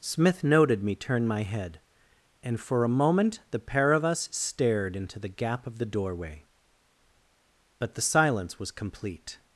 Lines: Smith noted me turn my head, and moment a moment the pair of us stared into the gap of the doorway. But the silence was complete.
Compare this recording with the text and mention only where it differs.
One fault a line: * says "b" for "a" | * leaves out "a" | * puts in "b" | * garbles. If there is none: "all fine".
* says "for" for "moment"